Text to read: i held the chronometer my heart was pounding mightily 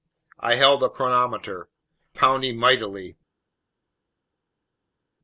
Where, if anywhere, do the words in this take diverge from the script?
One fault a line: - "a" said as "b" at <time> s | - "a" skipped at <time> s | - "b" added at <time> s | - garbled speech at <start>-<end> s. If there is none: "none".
- "my heart was" skipped at 1.7 s